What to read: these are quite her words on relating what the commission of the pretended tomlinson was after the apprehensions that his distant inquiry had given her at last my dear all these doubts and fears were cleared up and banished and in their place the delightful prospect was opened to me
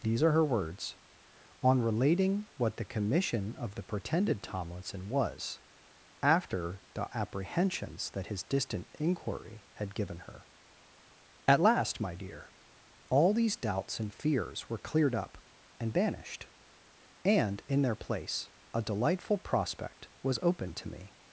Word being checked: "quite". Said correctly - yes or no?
no